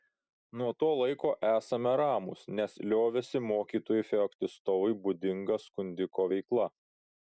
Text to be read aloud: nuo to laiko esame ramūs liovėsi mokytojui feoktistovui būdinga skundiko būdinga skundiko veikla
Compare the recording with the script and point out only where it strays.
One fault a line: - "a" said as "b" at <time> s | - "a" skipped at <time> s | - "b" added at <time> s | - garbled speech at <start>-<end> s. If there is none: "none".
- "nes" added at 2.6 s
- "būdinga skundiko" skipped at 6.3 s